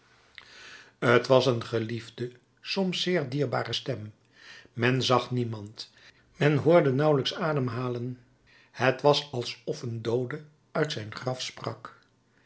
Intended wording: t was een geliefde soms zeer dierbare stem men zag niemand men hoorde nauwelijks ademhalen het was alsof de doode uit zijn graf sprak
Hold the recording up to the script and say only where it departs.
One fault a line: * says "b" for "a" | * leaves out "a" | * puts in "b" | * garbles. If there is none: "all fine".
* says "een" for "de"